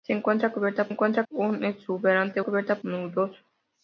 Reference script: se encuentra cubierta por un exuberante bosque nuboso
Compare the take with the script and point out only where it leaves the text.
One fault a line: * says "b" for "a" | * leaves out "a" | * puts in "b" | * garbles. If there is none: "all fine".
* says "encuentra" for "por"
* says "cubierta" for "bosque"